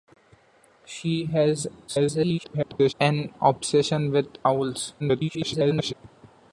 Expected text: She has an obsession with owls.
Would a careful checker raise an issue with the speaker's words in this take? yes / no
yes